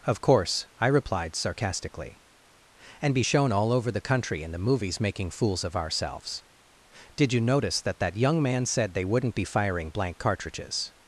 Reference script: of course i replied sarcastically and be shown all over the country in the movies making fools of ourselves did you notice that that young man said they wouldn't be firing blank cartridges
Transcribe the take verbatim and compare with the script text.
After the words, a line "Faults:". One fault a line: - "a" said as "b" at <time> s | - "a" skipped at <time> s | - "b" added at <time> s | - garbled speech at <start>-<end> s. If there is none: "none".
of course i replied sarcastically and be shown all over the country in the movies making fools of ourselves did you notice that that young man said they wouldn't be firing blank cartridges
Faults:
none